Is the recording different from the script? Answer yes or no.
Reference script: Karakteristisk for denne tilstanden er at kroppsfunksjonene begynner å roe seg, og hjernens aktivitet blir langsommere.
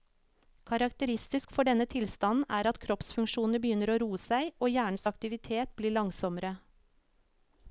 no